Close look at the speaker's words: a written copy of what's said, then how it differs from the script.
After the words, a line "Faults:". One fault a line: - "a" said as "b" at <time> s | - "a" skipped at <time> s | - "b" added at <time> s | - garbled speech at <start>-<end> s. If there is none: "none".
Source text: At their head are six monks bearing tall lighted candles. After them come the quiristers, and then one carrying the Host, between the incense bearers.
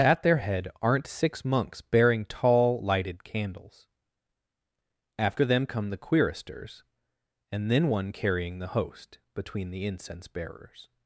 At their head aren't six monks bearing tall lighted candles. After them come the quiristers, and then one carrying the Host, between the incense bearers.
Faults:
- "are" said as "aren't" at 0.8 s